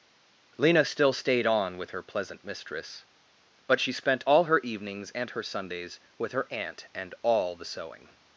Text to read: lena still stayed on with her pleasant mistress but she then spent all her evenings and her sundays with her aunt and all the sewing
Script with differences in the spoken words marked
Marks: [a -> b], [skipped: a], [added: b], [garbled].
lena still stayed on with her pleasant mistress but she [skipped: then] spent all her evenings and her sundays with her aunt and all the sewing